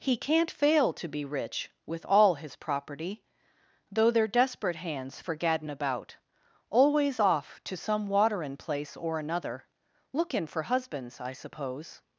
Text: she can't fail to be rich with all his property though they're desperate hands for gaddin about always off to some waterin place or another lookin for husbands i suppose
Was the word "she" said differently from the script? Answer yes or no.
yes